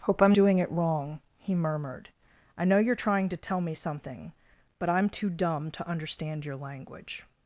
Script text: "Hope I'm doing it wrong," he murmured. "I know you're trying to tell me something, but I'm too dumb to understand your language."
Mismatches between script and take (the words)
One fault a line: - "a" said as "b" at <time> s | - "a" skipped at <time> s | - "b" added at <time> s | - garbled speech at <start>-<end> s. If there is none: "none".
none